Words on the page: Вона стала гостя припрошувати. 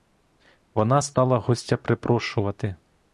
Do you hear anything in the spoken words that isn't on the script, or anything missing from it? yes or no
no